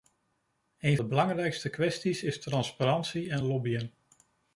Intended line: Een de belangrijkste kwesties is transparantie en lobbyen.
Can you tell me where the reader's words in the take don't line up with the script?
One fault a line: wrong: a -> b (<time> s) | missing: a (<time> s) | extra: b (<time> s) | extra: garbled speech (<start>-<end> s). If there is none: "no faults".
no faults